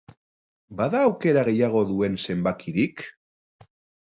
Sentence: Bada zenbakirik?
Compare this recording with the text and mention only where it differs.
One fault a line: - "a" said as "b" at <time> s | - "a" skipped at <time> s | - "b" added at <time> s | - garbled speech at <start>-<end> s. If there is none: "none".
- "aukera gehiago duen" added at 1.1 s